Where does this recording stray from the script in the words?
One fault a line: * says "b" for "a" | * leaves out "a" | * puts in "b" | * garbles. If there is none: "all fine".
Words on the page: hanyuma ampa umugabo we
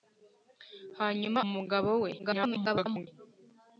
* leaves out "ampa"
* garbles